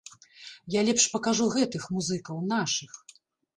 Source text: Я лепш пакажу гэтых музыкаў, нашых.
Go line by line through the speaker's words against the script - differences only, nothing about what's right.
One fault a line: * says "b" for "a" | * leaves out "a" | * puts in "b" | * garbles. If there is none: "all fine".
all fine